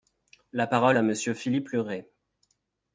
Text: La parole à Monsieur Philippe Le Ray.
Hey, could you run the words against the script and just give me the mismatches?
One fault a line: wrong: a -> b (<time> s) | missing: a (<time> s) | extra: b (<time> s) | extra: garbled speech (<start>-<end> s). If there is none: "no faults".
no faults